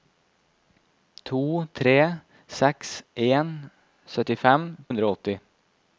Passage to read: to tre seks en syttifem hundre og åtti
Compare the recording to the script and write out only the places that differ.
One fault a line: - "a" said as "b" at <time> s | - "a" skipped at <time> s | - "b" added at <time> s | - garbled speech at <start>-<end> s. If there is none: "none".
none